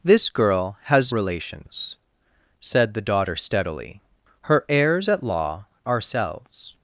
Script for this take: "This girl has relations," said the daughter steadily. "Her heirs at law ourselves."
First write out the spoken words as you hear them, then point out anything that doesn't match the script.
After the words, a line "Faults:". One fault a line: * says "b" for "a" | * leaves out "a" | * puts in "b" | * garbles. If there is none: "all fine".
"This girl has relations," said the daughter steadily. "Her heirs at law ourselves."
Faults:
all fine